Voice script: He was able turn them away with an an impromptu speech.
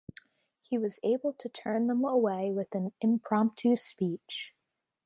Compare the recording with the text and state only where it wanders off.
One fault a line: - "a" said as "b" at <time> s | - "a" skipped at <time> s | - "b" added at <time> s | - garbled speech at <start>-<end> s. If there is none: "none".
- "to" added at 1.3 s
- "an" skipped at 2.9 s